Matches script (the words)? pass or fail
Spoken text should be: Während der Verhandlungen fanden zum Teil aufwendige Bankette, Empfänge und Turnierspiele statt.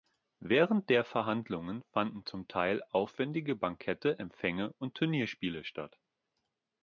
pass